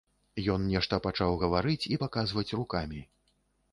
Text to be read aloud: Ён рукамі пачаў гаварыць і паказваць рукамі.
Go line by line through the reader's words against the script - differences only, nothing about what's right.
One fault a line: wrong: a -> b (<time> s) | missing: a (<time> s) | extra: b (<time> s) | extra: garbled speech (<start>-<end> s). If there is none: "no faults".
wrong: рукамі -> нешта (0.7 s)